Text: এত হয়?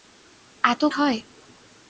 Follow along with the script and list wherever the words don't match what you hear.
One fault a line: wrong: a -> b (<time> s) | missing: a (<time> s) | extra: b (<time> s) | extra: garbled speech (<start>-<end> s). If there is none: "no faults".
no faults